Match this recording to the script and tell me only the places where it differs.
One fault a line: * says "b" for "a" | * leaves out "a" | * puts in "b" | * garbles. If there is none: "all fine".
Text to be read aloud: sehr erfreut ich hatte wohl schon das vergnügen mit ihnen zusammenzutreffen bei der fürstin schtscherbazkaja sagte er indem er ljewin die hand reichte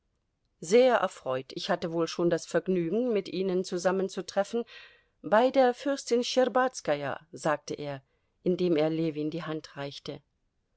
all fine